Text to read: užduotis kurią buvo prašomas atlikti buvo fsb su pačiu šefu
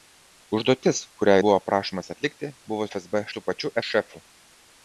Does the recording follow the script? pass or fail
pass